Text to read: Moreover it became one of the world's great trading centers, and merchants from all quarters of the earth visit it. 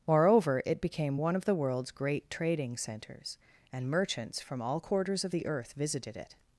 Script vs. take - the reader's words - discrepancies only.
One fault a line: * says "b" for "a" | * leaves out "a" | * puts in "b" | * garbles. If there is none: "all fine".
* says "visited" for "visit"